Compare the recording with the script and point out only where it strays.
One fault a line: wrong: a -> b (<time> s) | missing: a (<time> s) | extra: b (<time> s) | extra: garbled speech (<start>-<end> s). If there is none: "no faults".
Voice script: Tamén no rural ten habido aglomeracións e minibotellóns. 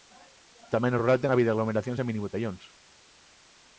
no faults